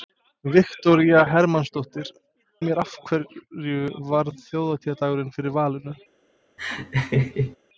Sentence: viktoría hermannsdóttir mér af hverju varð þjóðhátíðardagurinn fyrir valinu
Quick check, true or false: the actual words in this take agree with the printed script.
true